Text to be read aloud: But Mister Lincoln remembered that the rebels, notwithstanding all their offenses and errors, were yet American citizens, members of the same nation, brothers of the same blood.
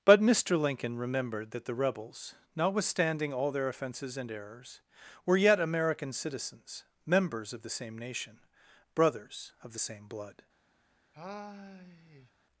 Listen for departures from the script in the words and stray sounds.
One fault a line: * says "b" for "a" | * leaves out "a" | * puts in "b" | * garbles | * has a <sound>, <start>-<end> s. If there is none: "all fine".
* has a sigh, 11.1-12.3 s